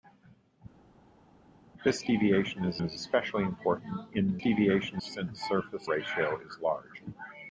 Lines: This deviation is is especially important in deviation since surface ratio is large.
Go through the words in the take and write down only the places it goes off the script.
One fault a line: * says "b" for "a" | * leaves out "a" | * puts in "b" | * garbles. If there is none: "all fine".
all fine